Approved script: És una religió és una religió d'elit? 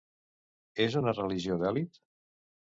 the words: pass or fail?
fail